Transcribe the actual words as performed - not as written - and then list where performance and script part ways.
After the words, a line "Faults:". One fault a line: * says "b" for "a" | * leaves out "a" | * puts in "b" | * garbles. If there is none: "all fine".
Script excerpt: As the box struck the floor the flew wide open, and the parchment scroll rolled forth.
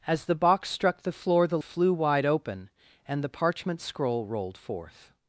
As the box struck the floor the flew wide open, and the parchment scroll rolled forth.
Faults:
all fine